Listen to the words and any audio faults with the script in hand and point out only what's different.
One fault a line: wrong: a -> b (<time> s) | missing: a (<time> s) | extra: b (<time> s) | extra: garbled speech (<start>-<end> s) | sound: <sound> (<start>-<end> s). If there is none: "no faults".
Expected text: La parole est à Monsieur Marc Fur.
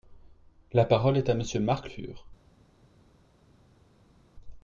no faults